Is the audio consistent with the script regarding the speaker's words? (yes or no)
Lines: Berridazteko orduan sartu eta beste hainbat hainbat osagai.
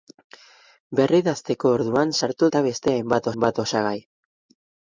yes